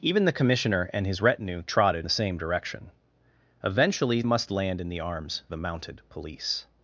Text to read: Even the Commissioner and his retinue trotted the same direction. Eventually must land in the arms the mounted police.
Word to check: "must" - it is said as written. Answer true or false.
true